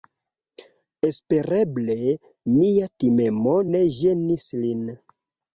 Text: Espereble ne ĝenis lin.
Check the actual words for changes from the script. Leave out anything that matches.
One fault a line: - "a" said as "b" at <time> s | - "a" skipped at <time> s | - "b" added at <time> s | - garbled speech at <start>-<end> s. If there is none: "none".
- "mia timemo" added at 2.5 s